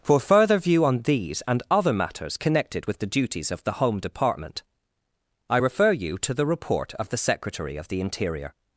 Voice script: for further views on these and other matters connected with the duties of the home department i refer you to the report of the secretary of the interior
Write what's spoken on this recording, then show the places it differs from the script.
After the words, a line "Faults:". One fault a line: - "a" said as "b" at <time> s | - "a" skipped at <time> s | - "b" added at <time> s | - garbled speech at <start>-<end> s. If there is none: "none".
for further view on these and other matters connected with the duties of the home department i refer you to the report of the secretary of the interior
Faults:
- "views" said as "view" at 0.6 s